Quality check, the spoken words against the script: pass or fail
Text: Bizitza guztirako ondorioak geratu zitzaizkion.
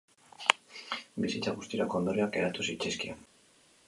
pass